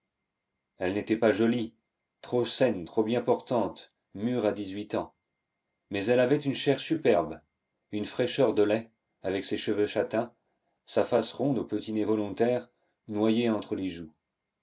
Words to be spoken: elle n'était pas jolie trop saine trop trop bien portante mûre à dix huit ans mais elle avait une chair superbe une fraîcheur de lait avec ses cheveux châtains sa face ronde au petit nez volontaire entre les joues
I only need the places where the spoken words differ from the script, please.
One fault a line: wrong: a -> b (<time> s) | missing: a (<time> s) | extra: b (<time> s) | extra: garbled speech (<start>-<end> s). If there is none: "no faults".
missing: trop (3.0 s)
extra: noyé (13.1 s)